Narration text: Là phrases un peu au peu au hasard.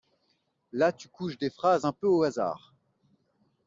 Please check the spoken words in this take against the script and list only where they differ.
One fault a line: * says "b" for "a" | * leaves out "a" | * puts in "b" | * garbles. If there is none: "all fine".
* puts in "tu couches des"
* leaves out "peu au"